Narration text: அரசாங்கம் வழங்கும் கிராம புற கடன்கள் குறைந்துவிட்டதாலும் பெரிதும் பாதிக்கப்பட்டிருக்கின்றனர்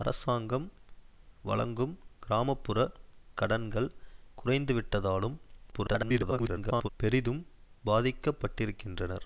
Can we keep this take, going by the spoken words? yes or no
no